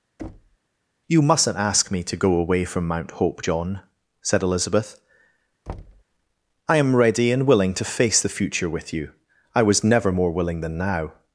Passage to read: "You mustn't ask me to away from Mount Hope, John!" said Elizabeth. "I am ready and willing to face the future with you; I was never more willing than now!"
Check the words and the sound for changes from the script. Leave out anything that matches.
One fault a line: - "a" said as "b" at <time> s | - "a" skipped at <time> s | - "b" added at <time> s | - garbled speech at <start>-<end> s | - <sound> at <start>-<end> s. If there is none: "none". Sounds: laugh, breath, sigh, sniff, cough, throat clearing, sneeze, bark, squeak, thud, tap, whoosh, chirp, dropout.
- thud at 0.2-0.6 s
- "go" added at 2.2 s
- thud at 5.7-6.0 s